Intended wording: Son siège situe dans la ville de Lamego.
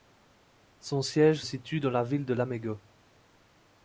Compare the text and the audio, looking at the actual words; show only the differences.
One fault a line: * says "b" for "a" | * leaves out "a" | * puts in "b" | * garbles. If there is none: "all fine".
all fine